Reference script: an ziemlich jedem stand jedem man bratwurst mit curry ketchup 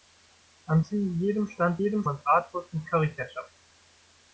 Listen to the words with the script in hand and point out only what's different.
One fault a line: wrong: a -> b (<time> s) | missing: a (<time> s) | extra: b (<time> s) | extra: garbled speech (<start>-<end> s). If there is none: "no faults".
no faults